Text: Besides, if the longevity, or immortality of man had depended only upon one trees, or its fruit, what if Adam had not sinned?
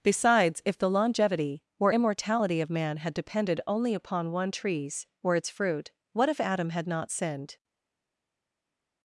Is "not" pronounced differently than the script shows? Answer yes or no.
no